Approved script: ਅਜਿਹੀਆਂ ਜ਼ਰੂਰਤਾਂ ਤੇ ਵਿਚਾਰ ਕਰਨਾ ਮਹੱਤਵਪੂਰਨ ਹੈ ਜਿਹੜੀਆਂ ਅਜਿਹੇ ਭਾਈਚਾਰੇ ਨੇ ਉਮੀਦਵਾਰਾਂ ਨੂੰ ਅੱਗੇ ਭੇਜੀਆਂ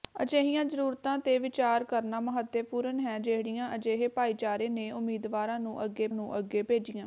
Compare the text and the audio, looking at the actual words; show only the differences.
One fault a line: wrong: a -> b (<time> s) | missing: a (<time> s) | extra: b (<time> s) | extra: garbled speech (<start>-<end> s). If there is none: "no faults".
extra: ਨੂੰ ਅੱਗੇ (6.1 s)